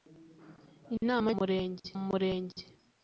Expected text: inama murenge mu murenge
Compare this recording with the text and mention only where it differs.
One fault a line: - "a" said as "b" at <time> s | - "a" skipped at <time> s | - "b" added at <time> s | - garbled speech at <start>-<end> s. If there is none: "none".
none